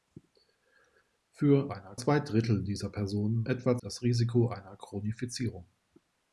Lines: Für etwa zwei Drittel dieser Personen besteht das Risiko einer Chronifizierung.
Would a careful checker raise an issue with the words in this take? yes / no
yes